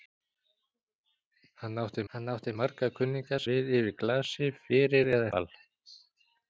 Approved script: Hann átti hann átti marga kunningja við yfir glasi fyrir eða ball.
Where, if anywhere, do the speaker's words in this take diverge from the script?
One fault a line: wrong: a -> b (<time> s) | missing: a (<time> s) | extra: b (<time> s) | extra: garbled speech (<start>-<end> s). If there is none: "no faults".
no faults